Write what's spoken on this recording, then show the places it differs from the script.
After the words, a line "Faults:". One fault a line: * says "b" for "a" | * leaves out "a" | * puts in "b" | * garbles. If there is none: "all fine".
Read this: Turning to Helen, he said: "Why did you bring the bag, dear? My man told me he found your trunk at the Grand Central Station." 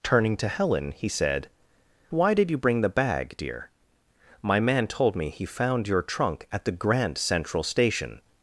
Turning to Helen, he said: "Why did you bring the bag, dear? My man told me he found your trunk at the Grand Central Station."
Faults:
all fine